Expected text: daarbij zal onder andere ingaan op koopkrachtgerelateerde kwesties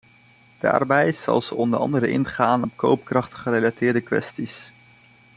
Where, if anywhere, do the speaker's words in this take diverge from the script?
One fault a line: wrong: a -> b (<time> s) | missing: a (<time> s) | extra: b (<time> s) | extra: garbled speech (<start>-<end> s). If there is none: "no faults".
extra: ze (1.4 s)